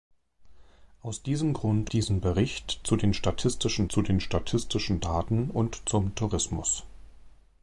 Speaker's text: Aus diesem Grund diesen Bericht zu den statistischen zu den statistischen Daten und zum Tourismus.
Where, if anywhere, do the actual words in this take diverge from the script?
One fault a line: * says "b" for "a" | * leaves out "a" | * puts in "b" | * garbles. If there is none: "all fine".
all fine